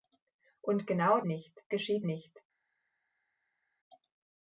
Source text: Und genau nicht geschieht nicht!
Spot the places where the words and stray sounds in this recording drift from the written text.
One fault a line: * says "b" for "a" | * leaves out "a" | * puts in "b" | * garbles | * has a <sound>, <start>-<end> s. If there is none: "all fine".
all fine